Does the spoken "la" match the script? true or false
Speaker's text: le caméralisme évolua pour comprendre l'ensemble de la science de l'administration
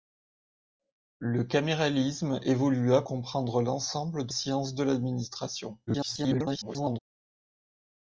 false